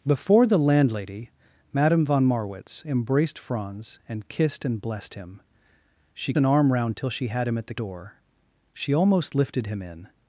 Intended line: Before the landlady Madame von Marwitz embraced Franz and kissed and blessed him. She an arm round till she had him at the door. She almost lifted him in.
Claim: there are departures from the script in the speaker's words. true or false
false